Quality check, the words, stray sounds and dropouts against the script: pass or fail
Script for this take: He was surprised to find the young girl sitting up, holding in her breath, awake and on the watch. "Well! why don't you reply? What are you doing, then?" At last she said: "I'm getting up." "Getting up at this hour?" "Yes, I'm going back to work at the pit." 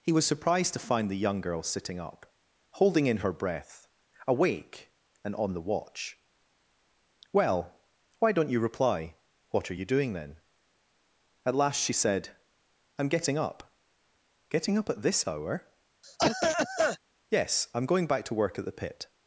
fail